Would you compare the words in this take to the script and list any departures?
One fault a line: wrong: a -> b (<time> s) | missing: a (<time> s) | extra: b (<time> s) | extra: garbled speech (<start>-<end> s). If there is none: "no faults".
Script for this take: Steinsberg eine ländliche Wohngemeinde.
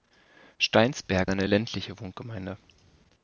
no faults